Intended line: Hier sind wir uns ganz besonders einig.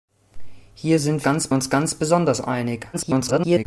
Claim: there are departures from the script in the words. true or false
true